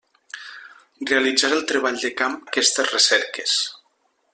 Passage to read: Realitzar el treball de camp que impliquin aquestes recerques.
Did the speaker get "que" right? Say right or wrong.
wrong